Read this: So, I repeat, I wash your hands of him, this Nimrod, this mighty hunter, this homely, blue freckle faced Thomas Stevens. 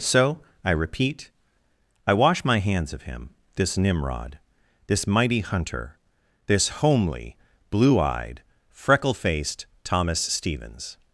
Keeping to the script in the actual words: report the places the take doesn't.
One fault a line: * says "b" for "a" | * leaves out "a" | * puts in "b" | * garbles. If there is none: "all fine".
* says "my" for "your"
* puts in "eyed"